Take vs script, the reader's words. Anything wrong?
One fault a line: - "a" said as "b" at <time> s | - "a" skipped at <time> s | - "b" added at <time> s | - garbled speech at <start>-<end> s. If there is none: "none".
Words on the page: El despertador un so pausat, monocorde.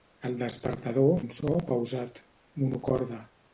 none